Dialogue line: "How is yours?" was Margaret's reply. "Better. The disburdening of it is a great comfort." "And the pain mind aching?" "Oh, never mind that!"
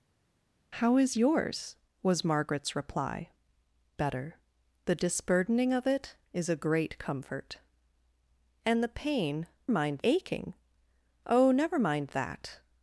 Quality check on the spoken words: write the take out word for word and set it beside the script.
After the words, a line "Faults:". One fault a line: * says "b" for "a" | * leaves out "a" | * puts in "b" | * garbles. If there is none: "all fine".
"How is yours?" was Margaret's reply. "Better. The disburdening of it is a great comfort." "And the pain mind aching?" "Oh, never mind that!"
Faults:
all fine